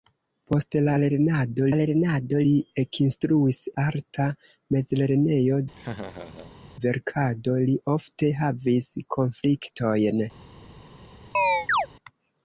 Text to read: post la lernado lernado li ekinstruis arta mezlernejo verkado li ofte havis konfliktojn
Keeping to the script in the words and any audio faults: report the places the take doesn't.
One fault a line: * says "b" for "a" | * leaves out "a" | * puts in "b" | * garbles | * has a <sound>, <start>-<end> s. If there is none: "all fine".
* has a laugh, 5.7-6.6 s
* has a chirp, 11.3-11.9 s